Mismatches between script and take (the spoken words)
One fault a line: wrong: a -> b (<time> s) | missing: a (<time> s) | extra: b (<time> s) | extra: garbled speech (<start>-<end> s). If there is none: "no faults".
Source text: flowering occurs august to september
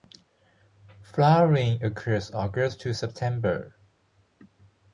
no faults